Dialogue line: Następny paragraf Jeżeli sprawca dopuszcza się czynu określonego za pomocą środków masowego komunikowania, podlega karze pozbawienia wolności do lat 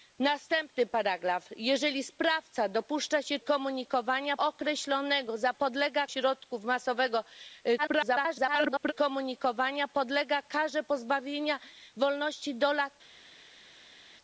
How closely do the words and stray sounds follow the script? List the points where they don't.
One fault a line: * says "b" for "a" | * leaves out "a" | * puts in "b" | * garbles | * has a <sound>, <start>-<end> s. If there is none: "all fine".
* says "komunikowania" for "czynu"
* says "podlega" for "pomocą"
* garbles